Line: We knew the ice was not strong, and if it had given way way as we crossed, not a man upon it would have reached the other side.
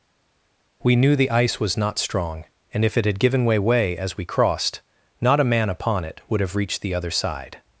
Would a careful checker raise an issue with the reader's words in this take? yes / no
no